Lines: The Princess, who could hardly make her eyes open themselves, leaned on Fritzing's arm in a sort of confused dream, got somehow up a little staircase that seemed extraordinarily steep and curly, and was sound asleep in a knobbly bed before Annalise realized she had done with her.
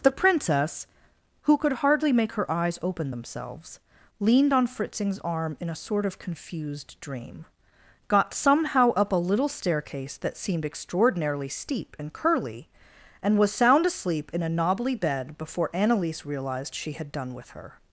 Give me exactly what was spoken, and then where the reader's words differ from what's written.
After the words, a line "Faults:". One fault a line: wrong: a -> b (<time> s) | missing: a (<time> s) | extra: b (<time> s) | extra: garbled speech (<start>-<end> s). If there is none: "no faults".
The Princess, who could hardly make her eyes open themselves, leaned on Fritzing's arm in a sort of confused dream, got somehow up a little staircase that seemed extraordinarily steep and curly, and was sound asleep in a knobbly bed before Annalise realized she had done with her.
Faults:
no faults